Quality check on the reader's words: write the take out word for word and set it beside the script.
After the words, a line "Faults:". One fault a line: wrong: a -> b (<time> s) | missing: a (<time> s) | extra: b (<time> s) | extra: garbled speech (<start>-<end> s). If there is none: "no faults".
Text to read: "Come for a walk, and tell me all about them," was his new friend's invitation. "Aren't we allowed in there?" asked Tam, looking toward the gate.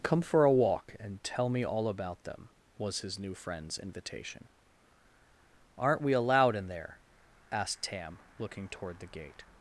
"Come for a walk, and tell me all about them," was his new friend's invitation. "Aren't we allowed in there?" asked Tam, looking toward the gate.
Faults:
no faults